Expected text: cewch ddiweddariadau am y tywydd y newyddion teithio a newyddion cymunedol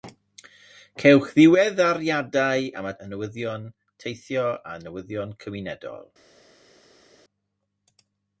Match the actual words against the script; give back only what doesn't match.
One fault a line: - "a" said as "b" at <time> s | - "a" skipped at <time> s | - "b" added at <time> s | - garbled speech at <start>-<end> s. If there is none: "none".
- "tywydd" skipped at 3.0 s